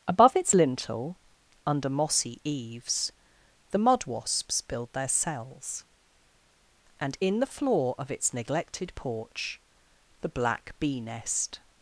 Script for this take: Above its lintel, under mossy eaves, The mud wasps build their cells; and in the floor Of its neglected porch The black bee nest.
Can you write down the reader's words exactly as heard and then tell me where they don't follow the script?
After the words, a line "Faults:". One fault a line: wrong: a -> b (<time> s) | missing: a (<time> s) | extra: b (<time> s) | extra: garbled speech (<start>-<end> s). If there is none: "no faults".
Above its lintel, under mossy eaves, The mud wasps build their cells; and in the floor Of its neglected porch The black bee nest.
Faults:
no faults